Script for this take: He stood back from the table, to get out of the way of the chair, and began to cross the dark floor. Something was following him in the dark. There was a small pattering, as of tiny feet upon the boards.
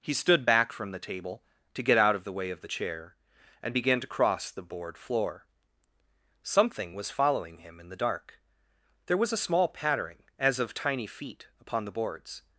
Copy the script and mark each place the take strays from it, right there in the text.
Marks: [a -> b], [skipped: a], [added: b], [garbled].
He stood back from the table, to get out of the way of the chair, and began to cross the [dark -> board] floor. Something was following him in the dark. There was a small pattering, as of tiny feet upon the boards.